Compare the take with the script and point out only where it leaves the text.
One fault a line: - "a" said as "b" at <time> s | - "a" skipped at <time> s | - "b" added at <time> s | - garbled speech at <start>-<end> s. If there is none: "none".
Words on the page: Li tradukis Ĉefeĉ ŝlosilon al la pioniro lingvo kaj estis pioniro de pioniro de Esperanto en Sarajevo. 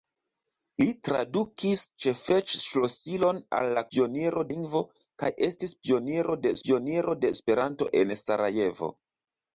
none